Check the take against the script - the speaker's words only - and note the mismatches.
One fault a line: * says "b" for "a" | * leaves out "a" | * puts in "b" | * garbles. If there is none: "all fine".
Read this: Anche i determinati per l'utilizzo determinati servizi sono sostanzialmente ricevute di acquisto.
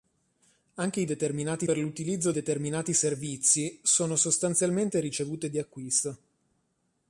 all fine